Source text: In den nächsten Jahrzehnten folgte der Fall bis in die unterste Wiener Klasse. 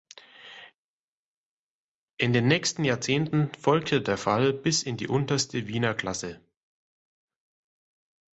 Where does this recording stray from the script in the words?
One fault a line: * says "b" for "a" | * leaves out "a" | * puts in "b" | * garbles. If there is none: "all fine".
all fine